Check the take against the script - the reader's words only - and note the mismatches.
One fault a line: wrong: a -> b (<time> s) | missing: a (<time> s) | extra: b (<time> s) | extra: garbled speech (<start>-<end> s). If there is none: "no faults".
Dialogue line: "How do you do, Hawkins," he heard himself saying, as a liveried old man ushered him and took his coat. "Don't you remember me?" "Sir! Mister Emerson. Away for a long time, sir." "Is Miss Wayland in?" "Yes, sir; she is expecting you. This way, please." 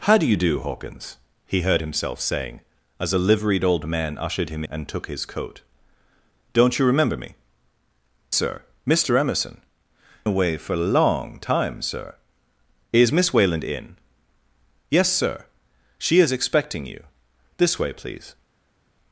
no faults